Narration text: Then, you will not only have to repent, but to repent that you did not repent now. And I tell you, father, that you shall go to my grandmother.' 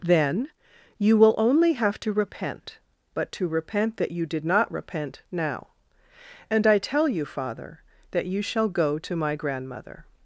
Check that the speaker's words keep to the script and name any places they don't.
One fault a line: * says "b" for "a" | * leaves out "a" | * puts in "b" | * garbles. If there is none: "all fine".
* leaves out "not"